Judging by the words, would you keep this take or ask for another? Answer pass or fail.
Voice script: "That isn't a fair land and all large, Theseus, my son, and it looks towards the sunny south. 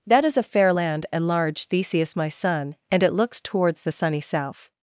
fail